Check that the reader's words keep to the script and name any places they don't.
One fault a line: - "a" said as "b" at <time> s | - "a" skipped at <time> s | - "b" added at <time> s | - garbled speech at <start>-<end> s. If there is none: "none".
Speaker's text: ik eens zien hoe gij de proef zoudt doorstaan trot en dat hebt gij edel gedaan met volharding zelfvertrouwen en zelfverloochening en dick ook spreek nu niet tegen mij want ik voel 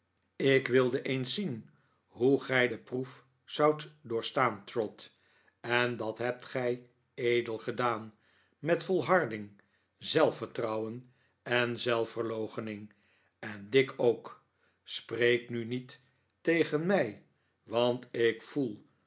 - "wilde" added at 0.7 s